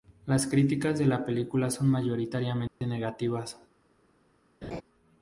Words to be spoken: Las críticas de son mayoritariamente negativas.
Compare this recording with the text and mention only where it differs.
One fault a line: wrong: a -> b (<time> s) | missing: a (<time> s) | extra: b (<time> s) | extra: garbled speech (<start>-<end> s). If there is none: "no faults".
extra: la película (1.1 s)